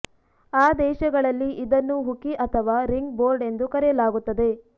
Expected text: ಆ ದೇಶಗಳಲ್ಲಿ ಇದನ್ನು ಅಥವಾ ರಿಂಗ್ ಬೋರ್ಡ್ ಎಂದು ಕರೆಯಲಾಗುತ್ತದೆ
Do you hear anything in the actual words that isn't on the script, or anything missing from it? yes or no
yes